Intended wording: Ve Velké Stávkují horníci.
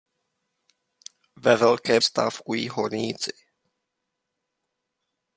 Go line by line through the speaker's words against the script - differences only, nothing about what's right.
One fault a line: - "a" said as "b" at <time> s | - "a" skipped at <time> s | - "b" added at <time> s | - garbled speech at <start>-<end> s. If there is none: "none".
none